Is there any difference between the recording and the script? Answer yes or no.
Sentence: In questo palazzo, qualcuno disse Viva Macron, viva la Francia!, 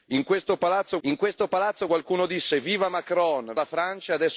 yes